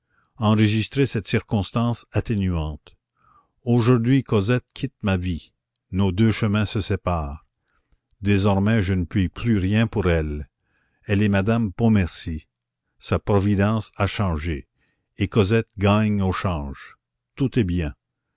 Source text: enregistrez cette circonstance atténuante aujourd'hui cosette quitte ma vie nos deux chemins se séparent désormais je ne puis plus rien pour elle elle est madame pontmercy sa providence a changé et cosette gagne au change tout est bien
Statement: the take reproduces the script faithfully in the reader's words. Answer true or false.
true